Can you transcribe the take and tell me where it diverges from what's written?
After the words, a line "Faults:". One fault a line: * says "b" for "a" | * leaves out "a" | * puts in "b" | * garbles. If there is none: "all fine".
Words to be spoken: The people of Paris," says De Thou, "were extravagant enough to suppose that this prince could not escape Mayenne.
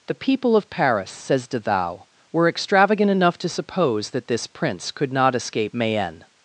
The people of Paris," says De Thou, "were extravagant enough to suppose that this prince could not escape Mayenne.
Faults:
all fine